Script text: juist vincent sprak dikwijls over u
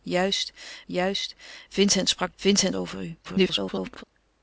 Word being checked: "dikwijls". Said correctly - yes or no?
no